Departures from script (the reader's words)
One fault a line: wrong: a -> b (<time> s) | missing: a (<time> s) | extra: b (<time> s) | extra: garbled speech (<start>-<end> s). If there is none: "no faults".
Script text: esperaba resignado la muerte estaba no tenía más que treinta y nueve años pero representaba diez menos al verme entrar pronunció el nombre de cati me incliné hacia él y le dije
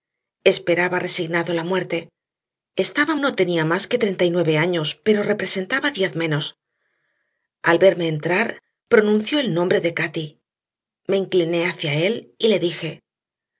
no faults